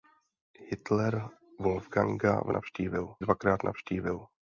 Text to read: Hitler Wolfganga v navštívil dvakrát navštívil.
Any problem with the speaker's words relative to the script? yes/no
no